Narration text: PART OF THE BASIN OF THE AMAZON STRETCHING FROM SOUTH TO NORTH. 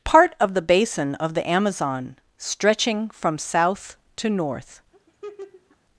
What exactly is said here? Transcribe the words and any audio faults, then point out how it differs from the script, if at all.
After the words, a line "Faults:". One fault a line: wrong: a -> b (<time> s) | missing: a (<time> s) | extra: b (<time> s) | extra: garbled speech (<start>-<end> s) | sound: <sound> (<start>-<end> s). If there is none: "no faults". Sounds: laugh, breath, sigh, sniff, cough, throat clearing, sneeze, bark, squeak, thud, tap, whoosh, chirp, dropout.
PART OF THE BASIN OF THE AMAZON STRETCHING FROM SOUTH TO NORTH.
Faults:
sound: laugh (4.9-5.8 s)